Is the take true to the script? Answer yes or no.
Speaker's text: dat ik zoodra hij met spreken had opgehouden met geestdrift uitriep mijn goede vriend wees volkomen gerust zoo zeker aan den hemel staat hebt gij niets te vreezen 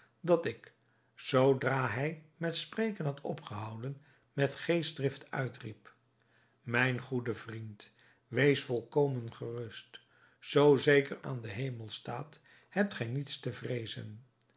yes